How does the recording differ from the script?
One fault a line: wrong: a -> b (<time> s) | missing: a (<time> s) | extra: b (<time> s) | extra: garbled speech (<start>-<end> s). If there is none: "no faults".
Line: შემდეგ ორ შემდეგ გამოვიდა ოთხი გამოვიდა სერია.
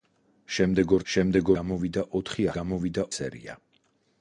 no faults